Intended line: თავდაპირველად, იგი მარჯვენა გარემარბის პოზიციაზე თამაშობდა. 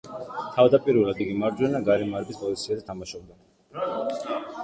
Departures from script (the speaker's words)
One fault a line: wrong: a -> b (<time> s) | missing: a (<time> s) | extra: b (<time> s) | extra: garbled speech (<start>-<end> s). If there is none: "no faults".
no faults